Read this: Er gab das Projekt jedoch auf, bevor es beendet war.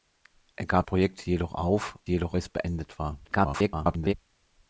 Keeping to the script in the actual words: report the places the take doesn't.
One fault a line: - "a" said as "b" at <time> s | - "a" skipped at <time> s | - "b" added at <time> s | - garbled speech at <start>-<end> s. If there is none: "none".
- "das" skipped at 0.9 s
- "bevor" said as "jedoch" at 2.1 s
- garbled speech at 3.2-4.1 s